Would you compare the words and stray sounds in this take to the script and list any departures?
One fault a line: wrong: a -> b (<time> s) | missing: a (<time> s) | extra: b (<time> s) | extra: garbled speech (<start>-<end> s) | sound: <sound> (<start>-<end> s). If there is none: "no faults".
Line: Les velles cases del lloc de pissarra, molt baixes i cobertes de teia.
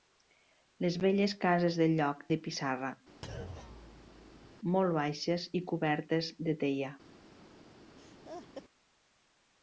sound: thud (3.2-4.6 s)
sound: laugh (8.0-8.6 s)